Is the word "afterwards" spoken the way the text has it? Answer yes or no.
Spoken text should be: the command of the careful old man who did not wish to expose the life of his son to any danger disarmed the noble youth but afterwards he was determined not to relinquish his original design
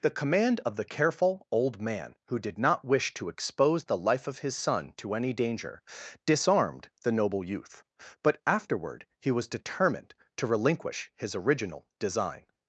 no